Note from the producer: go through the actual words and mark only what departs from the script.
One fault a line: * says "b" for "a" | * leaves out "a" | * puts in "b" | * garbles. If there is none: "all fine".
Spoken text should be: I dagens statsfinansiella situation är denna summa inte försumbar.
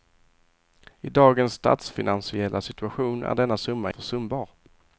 * leaves out "inte"